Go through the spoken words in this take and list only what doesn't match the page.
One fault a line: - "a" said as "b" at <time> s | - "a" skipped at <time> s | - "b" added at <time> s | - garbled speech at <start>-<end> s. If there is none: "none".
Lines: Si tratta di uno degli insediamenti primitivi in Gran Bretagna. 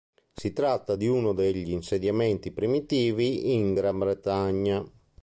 none